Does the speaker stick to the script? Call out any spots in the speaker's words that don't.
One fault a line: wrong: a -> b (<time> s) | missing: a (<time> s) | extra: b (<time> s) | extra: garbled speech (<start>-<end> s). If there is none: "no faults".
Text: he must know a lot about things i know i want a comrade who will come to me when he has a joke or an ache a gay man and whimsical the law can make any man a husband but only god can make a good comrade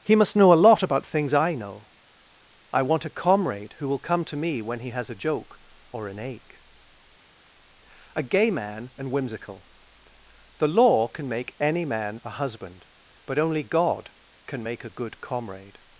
no faults